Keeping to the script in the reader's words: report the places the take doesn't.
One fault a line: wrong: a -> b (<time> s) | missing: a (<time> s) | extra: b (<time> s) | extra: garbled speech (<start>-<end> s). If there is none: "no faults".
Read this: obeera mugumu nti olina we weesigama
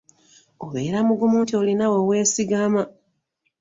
no faults